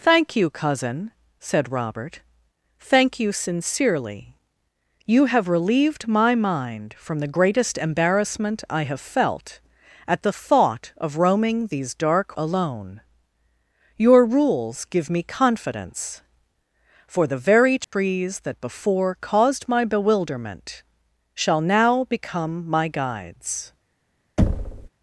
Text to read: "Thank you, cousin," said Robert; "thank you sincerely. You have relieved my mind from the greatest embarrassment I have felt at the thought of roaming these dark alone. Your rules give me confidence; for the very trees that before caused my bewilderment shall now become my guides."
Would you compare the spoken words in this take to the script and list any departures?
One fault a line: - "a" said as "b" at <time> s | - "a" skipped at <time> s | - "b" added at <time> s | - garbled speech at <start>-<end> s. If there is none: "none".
none